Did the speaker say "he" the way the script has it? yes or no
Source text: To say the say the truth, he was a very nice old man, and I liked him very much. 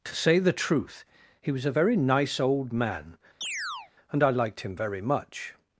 yes